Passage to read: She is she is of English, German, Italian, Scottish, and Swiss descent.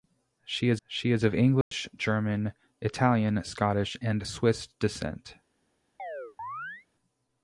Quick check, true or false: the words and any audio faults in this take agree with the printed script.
false